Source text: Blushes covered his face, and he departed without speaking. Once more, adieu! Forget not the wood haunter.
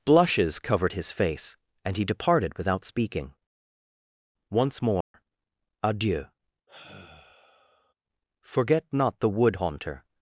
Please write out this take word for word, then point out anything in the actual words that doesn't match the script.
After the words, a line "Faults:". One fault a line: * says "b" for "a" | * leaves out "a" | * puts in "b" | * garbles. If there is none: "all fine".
Blushes covered his face, and he departed without speaking. Once more, adieu! Forget not the wood haunter.
Faults:
all fine